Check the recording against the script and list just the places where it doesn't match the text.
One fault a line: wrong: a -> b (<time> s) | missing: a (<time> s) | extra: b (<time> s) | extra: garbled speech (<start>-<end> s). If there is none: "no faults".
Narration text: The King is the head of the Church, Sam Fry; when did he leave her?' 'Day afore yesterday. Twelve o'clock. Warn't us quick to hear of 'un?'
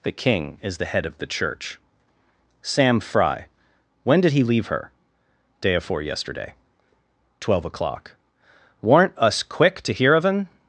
no faults